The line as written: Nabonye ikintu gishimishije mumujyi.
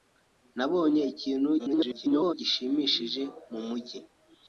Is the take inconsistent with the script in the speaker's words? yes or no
yes